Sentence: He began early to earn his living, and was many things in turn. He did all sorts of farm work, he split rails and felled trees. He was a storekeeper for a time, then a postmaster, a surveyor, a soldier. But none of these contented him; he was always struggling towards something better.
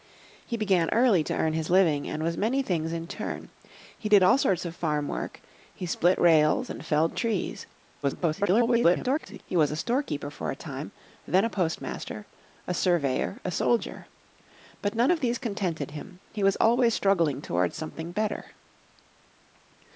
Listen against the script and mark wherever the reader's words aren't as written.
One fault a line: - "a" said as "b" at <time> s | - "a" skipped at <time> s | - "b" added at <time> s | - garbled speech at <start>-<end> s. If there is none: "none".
- garbled speech at 8.0-9.4 s